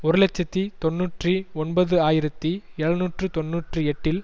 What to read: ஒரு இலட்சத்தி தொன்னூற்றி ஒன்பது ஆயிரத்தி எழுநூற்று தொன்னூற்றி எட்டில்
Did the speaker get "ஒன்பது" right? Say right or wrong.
right